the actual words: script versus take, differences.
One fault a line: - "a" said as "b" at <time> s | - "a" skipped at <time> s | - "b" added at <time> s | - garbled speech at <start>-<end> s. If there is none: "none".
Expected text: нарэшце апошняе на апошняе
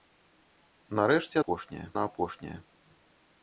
none